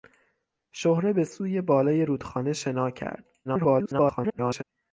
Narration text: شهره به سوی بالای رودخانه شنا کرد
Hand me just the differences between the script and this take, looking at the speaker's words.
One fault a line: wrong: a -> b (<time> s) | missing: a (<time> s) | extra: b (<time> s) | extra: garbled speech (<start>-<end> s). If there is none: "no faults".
extra: garbled speech (3.4-4.6 s)